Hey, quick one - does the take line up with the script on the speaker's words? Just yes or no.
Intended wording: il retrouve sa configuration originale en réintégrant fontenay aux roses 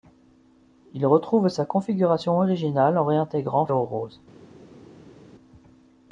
no